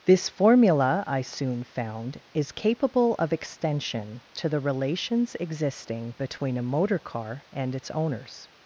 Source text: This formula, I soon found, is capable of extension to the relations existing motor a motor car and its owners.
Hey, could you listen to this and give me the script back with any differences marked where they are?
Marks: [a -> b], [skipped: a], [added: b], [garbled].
This formula, I soon found, is capable of extension to the relations existing [motor -> between] a motor car and its owners.